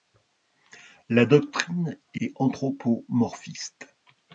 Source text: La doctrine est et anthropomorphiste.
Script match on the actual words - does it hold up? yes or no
yes